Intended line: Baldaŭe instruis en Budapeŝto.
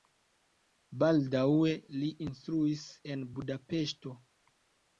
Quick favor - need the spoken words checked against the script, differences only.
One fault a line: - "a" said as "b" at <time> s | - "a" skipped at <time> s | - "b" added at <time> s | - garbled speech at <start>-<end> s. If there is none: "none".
- "li" added at 2.0 s